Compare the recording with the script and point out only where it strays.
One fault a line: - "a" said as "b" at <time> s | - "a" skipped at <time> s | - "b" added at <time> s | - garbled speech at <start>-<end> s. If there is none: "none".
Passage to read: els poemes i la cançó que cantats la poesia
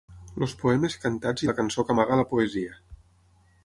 - "cantats" added at 1.0 s
- "cantats" said as "amaga" at 2.0 s